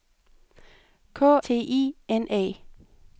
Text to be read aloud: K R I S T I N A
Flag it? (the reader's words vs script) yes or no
yes